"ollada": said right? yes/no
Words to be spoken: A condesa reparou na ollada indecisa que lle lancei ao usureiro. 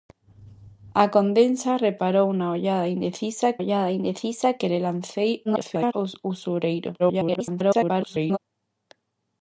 yes